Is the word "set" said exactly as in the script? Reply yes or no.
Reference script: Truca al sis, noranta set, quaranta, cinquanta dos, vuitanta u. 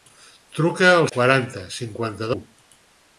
no